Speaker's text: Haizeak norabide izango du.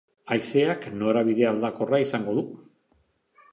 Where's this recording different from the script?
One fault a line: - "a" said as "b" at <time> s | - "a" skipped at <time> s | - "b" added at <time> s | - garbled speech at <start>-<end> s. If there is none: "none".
- "aldakorra" added at 1.5 s